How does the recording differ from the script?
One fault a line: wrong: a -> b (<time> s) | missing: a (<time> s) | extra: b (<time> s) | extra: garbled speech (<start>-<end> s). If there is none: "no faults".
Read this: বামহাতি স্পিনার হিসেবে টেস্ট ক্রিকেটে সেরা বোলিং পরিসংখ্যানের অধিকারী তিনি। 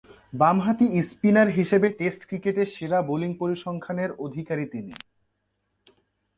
no faults